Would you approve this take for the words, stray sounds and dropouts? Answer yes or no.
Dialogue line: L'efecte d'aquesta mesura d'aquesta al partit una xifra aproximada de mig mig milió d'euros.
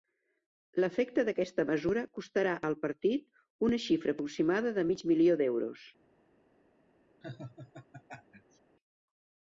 no